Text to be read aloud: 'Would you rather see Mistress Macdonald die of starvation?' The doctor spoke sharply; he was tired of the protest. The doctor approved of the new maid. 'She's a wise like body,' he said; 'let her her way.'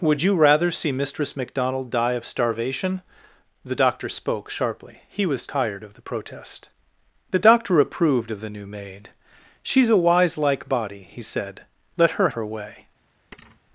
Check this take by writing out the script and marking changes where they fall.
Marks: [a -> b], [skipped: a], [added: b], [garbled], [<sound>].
'Would you rather see Mistress Macdonald die of starvation?' The doctor spoke sharply; he was tired of the protest. The doctor approved of the new maid. 'She's a wise like body,' he said; 'let her her way.' [thud]